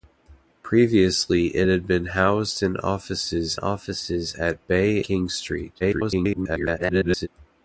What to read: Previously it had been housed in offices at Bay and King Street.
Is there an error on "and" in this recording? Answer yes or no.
yes